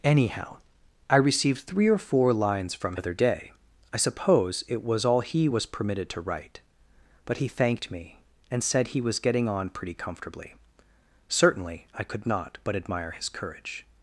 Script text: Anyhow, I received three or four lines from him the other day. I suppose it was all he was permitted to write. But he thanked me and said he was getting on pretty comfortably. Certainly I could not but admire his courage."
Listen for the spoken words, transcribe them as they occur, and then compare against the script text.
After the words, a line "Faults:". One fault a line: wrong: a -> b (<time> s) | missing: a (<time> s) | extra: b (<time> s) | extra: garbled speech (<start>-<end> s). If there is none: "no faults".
Anyhow, I received three or four lines from other day. I suppose it was all he was permitted to write. But he thanked me and said he was getting on pretty comfortably. Certainly I could not but admire his courage."
Faults:
missing: him the (3.0 s)